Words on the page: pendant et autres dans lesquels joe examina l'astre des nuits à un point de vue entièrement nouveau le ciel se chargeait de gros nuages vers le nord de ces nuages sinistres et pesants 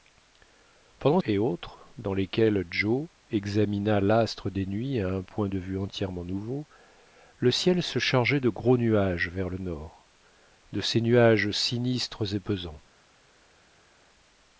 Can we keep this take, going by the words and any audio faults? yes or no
yes